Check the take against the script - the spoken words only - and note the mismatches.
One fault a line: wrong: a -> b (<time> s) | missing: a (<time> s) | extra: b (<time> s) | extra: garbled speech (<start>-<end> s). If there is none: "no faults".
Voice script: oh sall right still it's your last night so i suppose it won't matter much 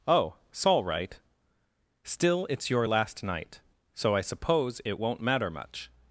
no faults